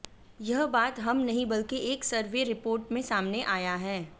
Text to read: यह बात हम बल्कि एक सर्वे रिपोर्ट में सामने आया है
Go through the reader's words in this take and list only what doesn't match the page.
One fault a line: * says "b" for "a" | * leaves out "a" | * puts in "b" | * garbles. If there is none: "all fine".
* puts in "नहीं"